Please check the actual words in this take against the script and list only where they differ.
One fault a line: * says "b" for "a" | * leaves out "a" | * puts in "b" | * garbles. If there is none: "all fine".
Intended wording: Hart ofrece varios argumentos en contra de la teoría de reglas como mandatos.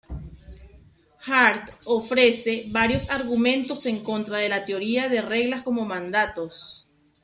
all fine